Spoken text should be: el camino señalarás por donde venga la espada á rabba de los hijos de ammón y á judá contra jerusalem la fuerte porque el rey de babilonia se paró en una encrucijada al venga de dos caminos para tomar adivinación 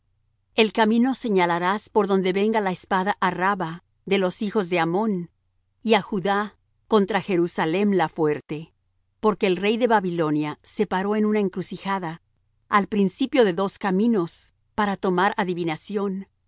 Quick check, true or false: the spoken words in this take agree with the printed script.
false